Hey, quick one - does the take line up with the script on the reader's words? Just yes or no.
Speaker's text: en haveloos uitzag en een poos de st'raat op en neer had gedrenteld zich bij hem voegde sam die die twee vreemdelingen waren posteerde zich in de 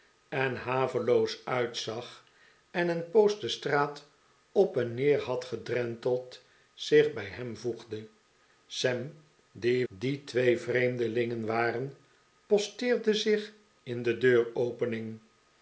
yes